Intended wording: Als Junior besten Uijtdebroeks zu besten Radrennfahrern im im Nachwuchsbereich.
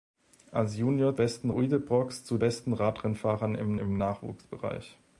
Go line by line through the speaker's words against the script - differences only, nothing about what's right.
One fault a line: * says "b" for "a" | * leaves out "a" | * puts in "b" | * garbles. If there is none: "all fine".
all fine